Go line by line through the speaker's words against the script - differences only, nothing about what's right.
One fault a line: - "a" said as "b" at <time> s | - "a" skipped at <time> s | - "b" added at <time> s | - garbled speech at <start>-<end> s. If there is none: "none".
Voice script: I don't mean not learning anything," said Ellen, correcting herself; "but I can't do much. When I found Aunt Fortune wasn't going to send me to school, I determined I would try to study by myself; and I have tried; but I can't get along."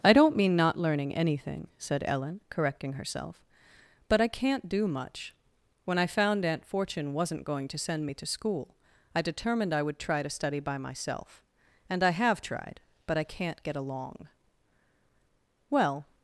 - "Well" added at 15.7 s